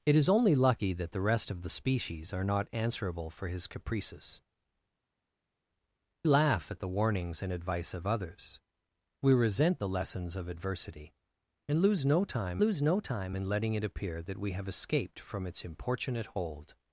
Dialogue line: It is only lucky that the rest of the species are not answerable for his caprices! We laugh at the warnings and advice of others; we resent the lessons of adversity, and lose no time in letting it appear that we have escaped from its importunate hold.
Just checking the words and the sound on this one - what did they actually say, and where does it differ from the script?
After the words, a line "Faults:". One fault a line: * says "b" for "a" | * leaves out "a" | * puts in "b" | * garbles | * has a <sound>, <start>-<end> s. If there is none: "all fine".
It is only lucky that the rest of the species are not answerable for his caprices! Laugh at the warnings and advice of others; we resent the lessons of adversity, and lose no time lose no time in letting it appear that we have escaped from its importunate hold.
Faults:
* leaves out "We"
* puts in "lose no time"